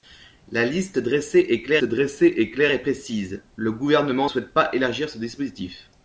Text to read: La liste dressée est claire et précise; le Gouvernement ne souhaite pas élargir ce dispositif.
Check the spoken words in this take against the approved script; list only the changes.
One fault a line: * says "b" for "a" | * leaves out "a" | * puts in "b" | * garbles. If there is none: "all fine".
* puts in "dressée est claire"
* leaves out "ne"